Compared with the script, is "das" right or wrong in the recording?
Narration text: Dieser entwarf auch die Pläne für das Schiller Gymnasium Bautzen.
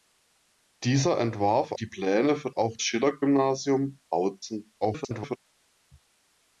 wrong